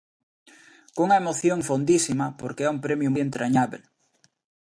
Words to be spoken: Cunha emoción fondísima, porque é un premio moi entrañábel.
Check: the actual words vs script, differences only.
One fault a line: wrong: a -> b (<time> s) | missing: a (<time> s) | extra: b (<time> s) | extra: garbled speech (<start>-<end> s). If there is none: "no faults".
missing: moi (3.1 s)